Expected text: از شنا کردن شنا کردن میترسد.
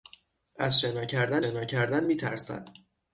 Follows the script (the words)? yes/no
yes